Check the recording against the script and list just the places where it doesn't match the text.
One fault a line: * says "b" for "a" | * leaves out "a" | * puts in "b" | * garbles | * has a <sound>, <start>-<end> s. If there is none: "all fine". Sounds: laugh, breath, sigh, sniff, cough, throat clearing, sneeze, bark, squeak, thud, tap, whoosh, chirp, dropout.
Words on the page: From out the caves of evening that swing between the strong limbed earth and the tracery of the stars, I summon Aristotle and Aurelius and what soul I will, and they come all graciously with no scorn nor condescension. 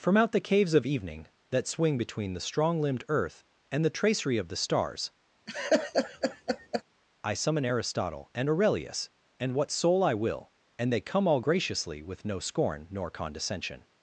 * has a laugh, 5.5-6.8 s